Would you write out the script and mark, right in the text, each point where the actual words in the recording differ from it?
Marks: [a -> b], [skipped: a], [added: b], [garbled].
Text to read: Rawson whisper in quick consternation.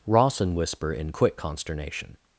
Rawson whisper in quick consternation.